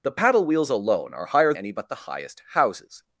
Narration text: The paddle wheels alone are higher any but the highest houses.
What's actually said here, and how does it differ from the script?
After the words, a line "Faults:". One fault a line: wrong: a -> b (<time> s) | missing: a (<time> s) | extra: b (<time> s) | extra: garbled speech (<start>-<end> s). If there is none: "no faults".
The paddle wheels alone are higher any but the highest houses.
Faults:
no faults